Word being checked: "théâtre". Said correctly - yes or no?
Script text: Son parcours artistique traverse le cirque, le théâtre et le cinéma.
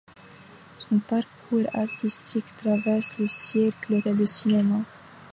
no